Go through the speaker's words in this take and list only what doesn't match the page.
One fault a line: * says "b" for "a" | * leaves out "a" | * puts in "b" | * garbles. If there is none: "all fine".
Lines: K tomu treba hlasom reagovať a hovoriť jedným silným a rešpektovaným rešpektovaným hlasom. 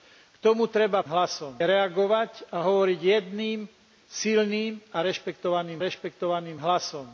all fine